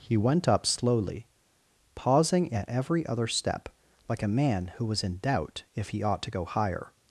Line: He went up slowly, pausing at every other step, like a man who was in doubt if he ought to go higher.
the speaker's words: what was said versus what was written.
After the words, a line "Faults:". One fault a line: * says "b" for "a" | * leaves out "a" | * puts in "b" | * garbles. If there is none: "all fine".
He went up slowly, pausing at every other step, like a man who was in doubt if he ought to go higher.
Faults:
all fine